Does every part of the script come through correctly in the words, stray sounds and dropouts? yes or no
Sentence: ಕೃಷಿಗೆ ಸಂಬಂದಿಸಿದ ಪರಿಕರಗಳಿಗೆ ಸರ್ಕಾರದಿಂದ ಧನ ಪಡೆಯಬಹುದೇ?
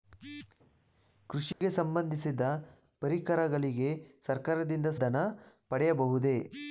no